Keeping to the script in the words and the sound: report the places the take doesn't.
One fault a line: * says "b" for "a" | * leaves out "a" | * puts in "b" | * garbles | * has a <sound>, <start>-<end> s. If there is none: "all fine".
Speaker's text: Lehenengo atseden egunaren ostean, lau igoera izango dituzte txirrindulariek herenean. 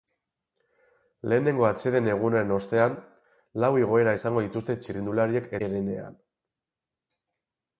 all fine